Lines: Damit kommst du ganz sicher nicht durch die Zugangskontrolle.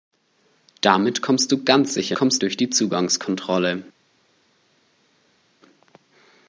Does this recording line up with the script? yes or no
no